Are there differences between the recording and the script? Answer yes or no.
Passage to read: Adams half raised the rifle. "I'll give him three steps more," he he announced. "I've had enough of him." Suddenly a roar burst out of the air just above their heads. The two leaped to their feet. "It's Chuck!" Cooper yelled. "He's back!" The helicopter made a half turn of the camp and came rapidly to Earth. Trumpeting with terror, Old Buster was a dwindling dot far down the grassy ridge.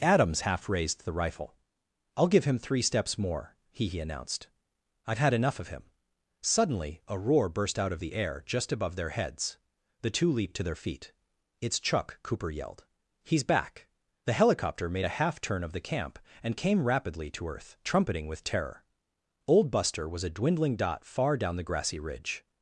no